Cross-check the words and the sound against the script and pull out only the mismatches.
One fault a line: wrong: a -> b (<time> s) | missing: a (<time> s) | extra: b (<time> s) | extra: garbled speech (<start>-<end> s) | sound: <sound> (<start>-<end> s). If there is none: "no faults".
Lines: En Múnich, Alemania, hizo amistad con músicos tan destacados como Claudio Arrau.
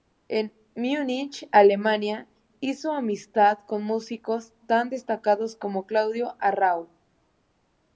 no faults